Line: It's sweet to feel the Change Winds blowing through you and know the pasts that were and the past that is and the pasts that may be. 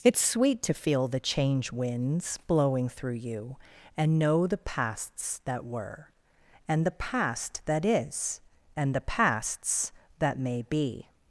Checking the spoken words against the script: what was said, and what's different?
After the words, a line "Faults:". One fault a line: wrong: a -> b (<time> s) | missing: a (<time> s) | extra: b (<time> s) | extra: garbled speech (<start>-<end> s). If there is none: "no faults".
It's sweet to feel the Change Winds blowing through you and know the pasts that were and the past that is and the pasts that may be.
Faults:
no faults